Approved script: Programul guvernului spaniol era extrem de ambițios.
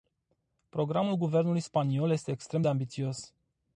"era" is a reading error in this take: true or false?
true